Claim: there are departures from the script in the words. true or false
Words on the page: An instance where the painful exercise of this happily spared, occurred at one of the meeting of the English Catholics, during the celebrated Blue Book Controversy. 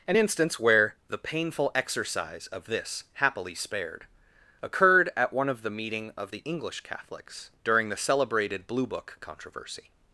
false